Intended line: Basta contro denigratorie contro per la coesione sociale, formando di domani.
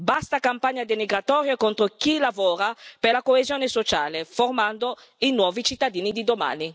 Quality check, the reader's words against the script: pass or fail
fail